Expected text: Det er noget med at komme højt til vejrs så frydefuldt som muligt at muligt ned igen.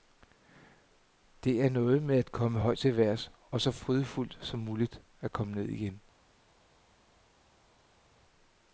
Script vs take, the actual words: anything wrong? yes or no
yes